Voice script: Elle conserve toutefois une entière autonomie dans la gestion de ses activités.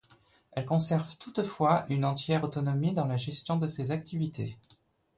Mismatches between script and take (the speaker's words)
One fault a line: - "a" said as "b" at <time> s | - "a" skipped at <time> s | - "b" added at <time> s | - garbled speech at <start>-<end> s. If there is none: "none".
none